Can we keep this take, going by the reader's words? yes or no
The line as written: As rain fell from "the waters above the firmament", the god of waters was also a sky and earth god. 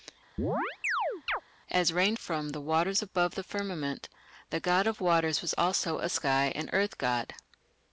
no